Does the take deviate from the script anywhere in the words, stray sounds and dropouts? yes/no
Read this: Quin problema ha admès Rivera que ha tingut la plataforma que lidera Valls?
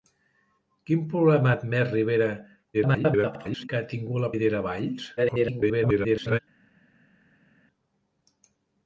yes